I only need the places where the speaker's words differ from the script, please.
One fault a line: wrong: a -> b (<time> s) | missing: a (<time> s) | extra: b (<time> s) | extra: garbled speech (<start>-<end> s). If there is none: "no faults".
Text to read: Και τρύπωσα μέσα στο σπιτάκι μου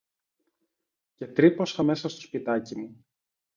no faults